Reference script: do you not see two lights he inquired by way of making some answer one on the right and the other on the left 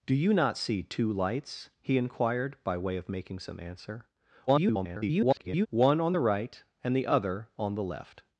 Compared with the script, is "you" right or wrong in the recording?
right